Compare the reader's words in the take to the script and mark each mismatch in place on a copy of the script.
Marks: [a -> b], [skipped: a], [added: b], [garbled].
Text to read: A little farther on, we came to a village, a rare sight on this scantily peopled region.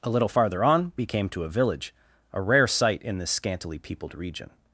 A little farther on, we came to a village, a rare sight [on -> in] this scantily peopled region.